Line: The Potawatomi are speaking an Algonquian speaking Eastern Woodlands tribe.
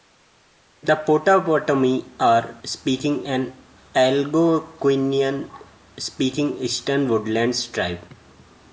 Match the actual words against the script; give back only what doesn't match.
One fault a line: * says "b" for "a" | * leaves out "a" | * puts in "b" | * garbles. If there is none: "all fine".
all fine